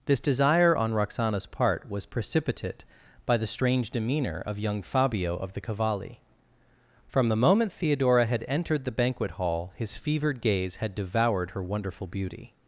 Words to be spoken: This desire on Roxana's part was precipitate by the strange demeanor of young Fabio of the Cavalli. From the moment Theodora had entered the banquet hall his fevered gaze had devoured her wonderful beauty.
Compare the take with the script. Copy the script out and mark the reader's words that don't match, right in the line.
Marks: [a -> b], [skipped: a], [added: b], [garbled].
This desire on Roxana's part was precipitate by the strange demeanor of young Fabio of the Cavalli. From the moment Theodora had entered the banquet hall his fevered gaze had devoured her wonderful beauty.